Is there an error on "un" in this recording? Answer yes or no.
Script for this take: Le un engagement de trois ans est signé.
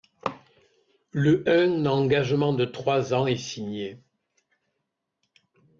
no